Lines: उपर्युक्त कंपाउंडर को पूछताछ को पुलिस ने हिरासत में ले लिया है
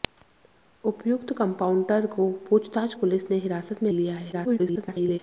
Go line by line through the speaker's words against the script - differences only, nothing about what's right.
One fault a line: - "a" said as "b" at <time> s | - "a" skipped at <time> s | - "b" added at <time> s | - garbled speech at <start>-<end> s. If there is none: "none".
- "को" skipped at 2.9 s
- "ले" skipped at 3.9 s
- garbled speech at 4.3-5.2 s